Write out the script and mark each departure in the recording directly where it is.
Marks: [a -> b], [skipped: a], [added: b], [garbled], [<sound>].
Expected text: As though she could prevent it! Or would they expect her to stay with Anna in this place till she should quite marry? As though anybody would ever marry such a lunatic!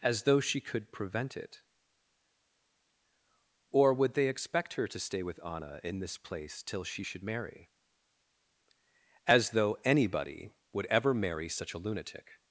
As though she could prevent it! Or would they expect her to stay with Anna in this place till she should [skipped: quite] marry? As though anybody would ever marry such a lunatic!